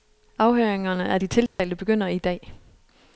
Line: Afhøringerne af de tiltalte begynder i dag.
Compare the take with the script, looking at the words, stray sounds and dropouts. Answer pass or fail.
fail